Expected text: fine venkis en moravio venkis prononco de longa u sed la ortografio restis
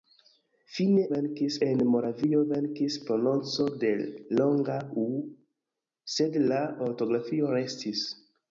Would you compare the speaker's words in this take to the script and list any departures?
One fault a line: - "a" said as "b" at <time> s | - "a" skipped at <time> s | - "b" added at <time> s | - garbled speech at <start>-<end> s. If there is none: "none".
none